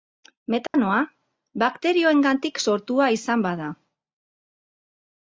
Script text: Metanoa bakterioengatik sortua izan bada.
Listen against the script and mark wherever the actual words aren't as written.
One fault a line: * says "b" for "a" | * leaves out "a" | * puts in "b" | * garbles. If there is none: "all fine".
all fine